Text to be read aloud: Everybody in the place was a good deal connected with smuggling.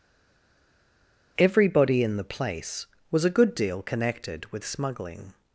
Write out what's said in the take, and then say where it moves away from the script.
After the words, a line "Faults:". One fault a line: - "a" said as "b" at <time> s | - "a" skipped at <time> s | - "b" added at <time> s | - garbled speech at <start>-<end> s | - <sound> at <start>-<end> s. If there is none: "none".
Everybody in the place was a good deal connected with smuggling.
Faults:
none